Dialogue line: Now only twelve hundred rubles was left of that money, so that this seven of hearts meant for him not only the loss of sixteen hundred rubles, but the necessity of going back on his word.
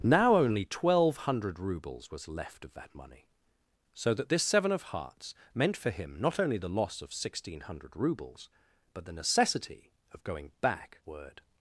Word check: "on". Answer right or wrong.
wrong